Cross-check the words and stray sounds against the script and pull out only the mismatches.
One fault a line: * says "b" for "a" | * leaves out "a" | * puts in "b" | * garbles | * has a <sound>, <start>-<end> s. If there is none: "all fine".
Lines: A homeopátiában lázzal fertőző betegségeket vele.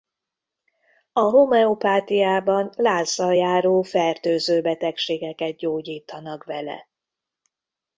* puts in "járó"
* puts in "gyógyítanak"